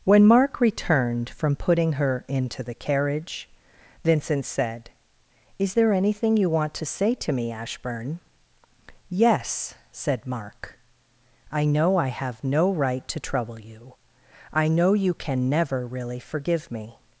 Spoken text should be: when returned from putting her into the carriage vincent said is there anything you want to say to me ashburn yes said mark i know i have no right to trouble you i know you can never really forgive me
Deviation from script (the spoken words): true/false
true